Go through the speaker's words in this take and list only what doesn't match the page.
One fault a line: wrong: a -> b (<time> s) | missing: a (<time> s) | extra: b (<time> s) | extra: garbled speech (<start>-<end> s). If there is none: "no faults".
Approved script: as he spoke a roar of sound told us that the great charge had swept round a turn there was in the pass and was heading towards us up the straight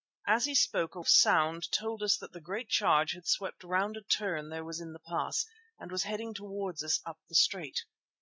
missing: roar (1.0 s)